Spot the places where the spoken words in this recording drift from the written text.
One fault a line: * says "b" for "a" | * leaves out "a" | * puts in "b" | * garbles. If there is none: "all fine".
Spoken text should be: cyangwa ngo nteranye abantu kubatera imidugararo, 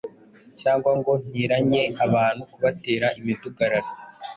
all fine